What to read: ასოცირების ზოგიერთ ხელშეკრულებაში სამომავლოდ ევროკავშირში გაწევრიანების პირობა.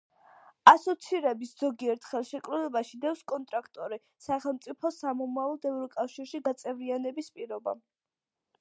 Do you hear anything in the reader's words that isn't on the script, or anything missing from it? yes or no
yes